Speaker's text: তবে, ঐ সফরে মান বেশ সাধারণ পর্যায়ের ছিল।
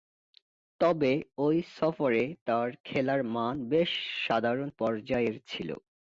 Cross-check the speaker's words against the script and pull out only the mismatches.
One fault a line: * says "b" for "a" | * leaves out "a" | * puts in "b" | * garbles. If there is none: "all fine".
* puts in "তার খেলার"